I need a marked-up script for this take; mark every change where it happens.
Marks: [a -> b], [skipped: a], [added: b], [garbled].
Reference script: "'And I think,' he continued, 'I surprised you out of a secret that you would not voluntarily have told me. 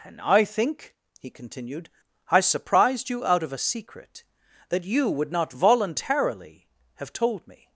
"'And I think,' he continued, 'I surprised you out of a secret that you would not voluntarily have told me.